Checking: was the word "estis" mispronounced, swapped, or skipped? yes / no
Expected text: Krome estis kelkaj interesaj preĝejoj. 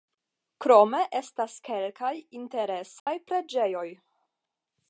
yes